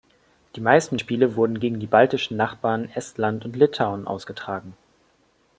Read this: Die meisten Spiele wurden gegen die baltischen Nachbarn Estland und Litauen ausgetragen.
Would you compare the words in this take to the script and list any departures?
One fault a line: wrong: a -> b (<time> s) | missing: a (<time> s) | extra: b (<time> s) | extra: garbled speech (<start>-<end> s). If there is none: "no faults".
no faults